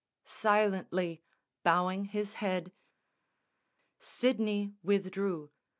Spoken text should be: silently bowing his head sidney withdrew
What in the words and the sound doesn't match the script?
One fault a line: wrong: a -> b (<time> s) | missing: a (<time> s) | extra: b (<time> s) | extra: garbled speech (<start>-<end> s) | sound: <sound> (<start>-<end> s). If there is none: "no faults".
no faults